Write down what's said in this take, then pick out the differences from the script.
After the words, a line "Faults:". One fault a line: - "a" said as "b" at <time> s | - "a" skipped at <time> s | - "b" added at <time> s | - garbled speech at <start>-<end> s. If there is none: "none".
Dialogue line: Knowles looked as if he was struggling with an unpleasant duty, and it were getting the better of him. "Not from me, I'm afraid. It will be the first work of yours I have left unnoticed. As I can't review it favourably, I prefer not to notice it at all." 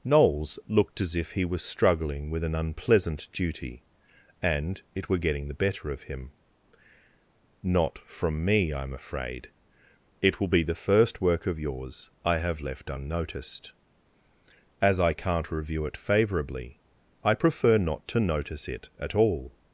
Knowles looked as if he was struggling with an unpleasant duty, and it were getting the better of him. "Not from me, I'm afraid. It will be the first work of yours I have left unnoticed. As I can't review it favourably, I prefer not to notice it at all."
Faults:
none